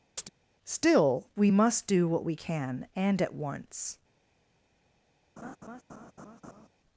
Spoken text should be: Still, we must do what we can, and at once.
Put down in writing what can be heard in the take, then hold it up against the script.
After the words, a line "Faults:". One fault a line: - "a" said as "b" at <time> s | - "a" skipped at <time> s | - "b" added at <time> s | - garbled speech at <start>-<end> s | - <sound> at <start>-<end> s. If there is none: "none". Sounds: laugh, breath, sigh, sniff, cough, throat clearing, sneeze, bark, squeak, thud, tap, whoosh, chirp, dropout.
Still, we must do what we can, and at once.
Faults:
- chirp at 0.2-0.3 s
- laugh at 5.4-6.7 s